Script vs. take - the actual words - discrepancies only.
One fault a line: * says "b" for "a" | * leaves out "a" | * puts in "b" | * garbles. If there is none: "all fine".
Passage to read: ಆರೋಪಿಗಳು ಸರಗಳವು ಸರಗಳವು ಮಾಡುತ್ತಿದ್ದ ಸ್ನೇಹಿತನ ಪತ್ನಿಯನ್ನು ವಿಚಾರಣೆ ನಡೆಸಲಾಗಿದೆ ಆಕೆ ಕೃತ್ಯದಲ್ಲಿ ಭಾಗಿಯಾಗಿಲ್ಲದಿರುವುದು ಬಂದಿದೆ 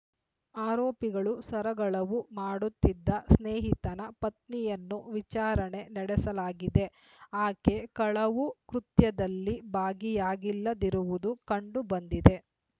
* leaves out "ಸರಗಳವು"
* puts in "ಕಳವು"
* puts in "ಕಂಡು"